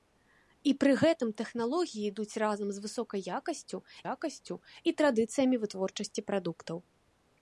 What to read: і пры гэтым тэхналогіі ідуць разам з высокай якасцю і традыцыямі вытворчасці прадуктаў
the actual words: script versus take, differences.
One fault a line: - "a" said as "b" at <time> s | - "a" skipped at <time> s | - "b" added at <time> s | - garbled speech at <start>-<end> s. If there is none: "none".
- "якасцю" added at 4.1 s